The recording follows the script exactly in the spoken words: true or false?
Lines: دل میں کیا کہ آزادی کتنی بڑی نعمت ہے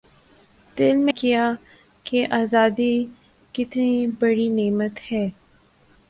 true